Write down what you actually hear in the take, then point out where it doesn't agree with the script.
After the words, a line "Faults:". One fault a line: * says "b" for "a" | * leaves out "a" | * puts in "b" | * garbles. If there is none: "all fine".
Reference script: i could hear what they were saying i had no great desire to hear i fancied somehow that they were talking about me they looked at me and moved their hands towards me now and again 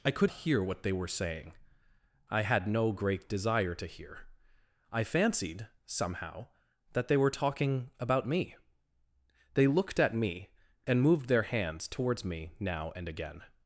i could hear what they were saying i had no great desire to hear i fancied somehow that they were talking about me they looked at me and moved their hands towards me now and again
Faults:
all fine